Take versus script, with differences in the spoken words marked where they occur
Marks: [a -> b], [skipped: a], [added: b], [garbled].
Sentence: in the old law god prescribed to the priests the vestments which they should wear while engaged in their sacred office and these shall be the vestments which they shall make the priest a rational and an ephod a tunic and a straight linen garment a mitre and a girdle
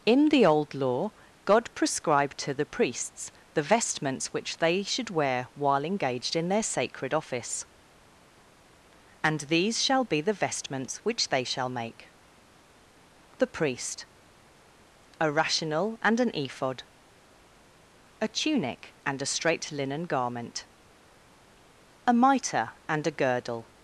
in the old law god prescribed to the priests the vestments which they should wear while engaged in their sacred office and these shall be the vestments which they shall make the priest a rational and an ephod a tunic and a straight linen garment a mitre and a girdle